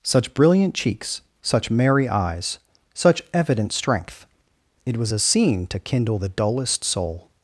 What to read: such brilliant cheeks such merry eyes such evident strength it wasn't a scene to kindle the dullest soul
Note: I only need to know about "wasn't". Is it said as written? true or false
false